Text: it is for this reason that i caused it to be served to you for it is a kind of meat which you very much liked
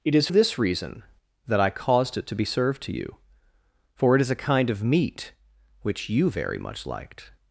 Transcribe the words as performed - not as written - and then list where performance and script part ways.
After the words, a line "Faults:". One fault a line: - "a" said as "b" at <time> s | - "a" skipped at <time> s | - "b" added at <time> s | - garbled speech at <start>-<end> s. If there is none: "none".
it is this reason that i caused it to be served to you for it is a kind of meat which you very much liked
Faults:
- "for" skipped at 0.3 s